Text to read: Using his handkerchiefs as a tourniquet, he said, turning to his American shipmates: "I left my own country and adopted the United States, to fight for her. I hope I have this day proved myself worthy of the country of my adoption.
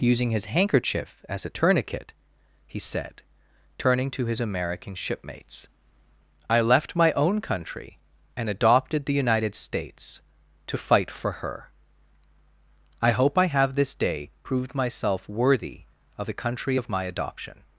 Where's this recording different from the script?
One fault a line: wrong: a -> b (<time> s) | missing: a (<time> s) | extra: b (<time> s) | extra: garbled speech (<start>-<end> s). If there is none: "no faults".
wrong: handkerchiefs -> handkerchief (0.5 s)